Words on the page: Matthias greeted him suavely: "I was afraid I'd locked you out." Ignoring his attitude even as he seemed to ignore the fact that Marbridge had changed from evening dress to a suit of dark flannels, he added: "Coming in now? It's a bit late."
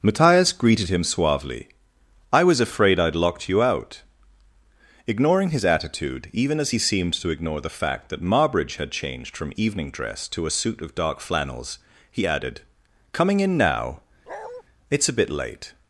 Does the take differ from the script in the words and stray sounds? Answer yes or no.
yes